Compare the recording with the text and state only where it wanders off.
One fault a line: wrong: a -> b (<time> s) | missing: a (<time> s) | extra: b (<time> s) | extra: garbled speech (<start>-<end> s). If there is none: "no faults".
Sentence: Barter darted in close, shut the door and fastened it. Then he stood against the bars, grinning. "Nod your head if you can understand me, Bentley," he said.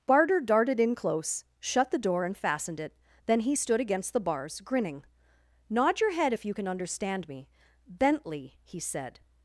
no faults